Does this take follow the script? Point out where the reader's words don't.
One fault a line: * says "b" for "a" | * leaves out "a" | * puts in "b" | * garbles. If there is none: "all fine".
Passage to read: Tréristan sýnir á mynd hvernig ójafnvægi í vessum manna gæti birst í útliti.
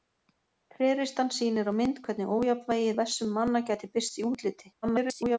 * garbles